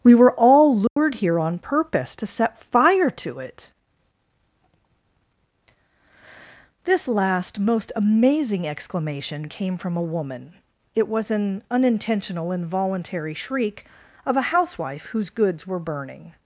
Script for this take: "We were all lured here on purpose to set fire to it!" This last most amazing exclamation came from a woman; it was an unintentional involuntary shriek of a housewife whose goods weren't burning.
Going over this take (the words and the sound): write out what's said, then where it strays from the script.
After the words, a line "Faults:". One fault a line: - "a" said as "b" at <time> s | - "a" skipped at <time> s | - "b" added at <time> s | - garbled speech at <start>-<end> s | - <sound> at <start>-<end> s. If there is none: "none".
"We were all lured here on purpose to set fire to it!" This last most amazing exclamation came from a woman; it was an unintentional involuntary shriek of a housewife whose goods were burning.
Faults:
- dropout at 0.9-1.0 s
- "weren't" said as "were" at 15.7 s